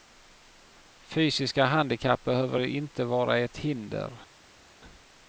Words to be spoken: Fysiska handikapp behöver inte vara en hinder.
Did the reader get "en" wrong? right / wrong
wrong